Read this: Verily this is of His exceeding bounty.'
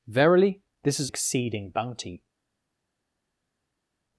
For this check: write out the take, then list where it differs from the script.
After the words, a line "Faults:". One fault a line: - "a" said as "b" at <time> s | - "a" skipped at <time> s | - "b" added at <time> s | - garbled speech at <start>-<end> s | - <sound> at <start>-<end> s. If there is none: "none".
Verily this is exceeding bounty.'
Faults:
- "of His" skipped at 1.1 s